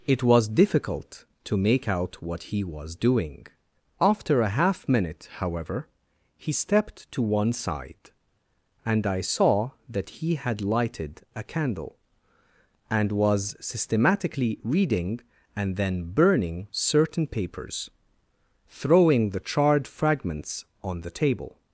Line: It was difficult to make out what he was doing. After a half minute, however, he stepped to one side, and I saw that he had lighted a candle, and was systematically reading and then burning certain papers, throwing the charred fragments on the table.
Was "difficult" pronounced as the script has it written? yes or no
yes